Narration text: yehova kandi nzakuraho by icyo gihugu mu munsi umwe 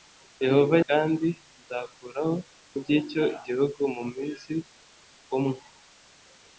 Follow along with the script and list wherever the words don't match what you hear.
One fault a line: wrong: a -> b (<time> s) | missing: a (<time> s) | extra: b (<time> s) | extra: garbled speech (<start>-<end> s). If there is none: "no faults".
no faults